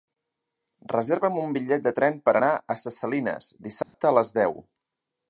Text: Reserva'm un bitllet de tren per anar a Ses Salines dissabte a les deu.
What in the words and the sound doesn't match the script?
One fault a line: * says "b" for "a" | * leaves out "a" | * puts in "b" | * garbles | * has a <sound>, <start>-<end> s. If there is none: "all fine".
* has a dropout, 3.8-3.9 s